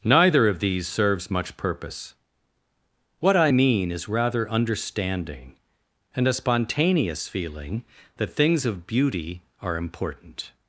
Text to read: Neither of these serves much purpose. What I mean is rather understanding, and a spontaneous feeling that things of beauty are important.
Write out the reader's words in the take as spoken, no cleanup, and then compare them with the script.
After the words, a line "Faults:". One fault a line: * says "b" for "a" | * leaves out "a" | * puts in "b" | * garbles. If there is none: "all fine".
Neither of these serves much purpose. What I mean is rather understanding, and a spontaneous feeling that things of beauty are important.
Faults:
all fine